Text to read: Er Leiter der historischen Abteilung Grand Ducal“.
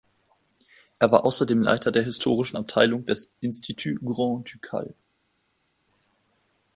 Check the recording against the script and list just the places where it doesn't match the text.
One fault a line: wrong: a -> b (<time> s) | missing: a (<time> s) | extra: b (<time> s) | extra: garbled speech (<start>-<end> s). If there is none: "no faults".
extra: war außerdem (1.1 s)
extra: des Institut (3.1 s)